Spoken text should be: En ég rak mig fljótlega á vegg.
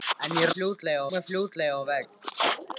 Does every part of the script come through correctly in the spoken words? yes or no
no